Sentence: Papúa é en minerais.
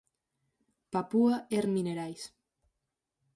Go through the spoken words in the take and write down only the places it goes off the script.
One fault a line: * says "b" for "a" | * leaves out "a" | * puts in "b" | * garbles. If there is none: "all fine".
all fine